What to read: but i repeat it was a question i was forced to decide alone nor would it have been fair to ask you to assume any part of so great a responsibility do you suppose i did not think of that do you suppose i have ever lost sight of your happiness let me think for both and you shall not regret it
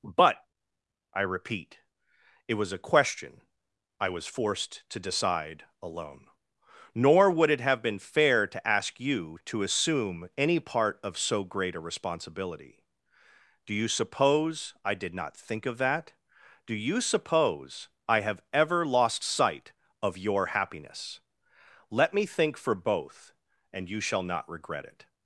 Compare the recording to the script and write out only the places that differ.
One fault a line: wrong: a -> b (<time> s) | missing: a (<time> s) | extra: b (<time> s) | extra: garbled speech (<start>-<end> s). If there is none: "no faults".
no faults